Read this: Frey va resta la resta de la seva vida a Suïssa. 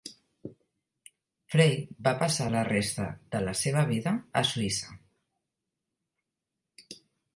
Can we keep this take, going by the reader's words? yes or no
no